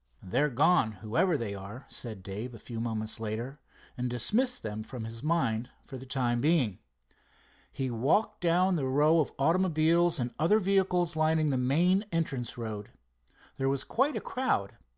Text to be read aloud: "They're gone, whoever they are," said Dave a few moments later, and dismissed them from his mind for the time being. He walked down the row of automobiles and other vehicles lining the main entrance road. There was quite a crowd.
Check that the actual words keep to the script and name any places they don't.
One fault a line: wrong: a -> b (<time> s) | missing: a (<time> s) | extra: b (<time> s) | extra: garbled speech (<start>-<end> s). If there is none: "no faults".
no faults